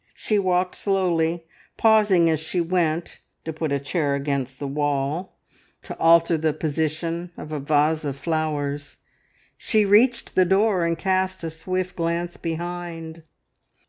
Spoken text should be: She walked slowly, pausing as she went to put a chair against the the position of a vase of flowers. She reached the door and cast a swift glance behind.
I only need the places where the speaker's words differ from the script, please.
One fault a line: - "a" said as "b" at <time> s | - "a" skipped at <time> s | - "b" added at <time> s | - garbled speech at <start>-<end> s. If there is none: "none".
- "wall to alter" added at 4.7 s